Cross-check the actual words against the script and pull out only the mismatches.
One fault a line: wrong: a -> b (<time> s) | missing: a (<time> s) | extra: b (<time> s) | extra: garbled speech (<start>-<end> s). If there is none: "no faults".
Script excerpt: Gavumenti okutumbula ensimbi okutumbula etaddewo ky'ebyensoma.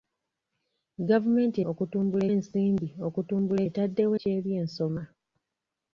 no faults